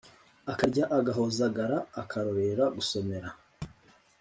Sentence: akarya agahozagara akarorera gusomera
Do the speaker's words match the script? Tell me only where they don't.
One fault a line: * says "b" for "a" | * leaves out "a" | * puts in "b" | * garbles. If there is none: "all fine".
all fine